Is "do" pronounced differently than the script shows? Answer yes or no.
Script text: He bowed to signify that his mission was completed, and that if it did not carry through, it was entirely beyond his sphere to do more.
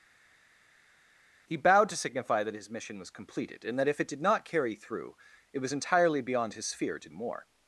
yes